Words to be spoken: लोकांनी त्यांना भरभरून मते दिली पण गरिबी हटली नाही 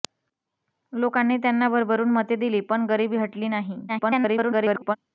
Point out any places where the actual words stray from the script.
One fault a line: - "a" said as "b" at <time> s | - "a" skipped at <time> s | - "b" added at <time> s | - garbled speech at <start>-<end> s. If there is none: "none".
- garbled speech at 3.9-5.0 s